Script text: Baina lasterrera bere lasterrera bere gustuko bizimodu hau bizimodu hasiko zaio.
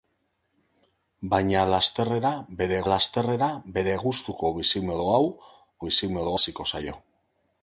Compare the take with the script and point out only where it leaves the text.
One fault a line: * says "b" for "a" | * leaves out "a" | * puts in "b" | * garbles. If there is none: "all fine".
all fine